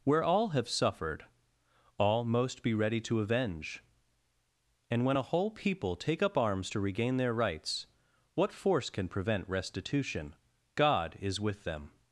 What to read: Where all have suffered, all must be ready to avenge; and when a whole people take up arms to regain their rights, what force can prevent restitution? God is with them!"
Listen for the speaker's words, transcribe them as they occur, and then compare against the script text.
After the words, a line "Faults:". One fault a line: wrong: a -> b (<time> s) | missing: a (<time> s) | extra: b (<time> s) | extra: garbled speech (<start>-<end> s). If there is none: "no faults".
Where all have suffered, all most be ready to avenge; and when a whole people take up arms to regain their rights, what force can prevent restitution? God is with them!"
Faults:
wrong: must -> most (2.2 s)